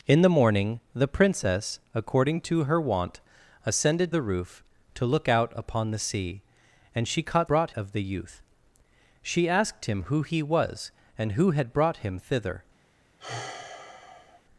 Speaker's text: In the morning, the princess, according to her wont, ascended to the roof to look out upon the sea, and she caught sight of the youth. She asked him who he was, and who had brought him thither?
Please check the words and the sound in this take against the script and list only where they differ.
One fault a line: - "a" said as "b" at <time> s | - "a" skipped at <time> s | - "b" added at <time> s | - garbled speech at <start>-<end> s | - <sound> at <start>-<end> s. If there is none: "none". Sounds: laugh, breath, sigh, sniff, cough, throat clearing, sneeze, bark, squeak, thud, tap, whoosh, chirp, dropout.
- "to" skipped at 4.1 s
- "sight" said as "brought" at 7.5 s
- sigh at 13.2-14.4 s